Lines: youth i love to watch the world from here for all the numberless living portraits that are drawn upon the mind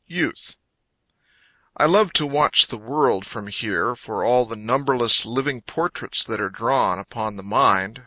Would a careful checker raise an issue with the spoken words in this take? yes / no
no